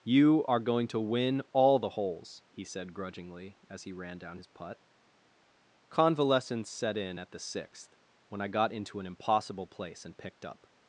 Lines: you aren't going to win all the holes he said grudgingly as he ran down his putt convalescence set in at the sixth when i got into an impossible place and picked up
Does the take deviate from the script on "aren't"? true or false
true